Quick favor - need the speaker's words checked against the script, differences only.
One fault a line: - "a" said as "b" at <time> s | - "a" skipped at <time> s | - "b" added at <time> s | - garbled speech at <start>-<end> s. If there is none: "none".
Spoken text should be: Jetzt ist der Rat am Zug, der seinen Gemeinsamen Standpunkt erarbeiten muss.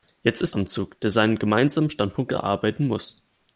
- "der Rat" skipped at 0.6 s